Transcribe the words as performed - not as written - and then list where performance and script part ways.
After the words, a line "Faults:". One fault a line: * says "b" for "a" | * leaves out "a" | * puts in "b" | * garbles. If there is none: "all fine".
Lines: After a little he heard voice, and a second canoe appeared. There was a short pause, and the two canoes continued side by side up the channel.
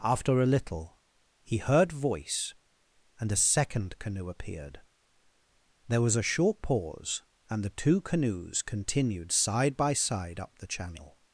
After a little he heard voice, and a second canoe appeared. There was a short pause, and the two canoes continued side by side up the channel.
Faults:
all fine